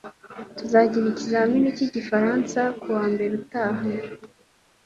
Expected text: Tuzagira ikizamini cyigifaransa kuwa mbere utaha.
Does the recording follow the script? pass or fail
pass